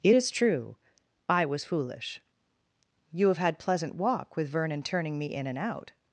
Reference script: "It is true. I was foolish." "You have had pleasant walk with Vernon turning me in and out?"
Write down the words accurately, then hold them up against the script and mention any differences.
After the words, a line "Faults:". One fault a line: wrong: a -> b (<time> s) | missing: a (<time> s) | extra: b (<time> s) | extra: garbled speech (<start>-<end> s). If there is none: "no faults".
"It is true. I was foolish." "You have had pleasant walk with Vernon turning me in and out?"
Faults:
no faults